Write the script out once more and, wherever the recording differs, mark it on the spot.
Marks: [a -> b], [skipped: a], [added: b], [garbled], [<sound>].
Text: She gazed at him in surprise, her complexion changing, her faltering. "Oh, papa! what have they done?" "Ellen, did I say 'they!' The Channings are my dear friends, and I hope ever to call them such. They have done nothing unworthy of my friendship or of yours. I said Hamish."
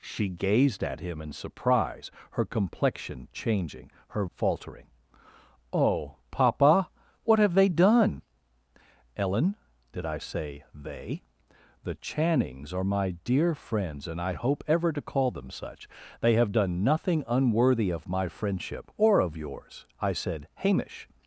She gazed at him in surprise, her complexion changing, her faltering. "Oh, papa! what have they done?" "Ellen, did I say 'they!' The Channings are my dear friends, and I hope ever to call them such. They have done nothing unworthy of my friendship or of yours. I said Hamish."